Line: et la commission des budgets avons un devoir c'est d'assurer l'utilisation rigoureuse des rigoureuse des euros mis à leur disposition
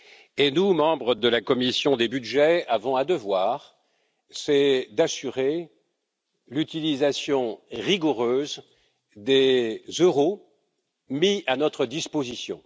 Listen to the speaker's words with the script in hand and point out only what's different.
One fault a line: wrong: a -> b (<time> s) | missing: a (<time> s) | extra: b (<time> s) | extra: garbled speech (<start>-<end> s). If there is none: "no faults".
extra: nous membres de (0.5 s)
missing: rigoureuse des (9.8 s)
wrong: leur -> notre (11.6 s)